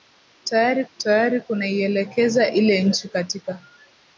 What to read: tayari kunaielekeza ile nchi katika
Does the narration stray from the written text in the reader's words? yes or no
yes